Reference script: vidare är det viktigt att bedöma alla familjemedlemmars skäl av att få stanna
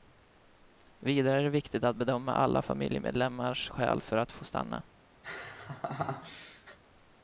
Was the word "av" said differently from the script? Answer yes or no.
yes